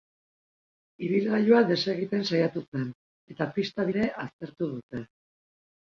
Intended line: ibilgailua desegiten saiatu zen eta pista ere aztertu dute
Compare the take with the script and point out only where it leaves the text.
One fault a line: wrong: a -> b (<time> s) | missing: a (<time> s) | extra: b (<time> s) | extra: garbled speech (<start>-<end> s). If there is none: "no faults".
no faults